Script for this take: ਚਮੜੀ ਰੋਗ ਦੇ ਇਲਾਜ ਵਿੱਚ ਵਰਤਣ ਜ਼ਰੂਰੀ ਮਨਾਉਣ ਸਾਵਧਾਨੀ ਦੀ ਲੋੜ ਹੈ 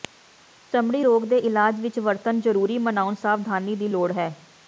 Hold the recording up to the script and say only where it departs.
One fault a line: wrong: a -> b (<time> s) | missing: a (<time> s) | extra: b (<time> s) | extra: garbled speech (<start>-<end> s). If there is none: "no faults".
no faults